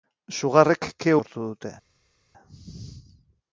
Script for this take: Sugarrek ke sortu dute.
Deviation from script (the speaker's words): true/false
false